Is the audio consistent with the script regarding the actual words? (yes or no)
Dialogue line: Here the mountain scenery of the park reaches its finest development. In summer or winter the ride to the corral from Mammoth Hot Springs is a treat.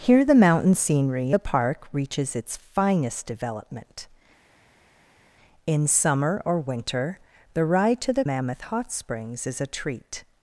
no